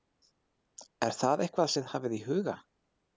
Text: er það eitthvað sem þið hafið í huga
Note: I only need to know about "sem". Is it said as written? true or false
false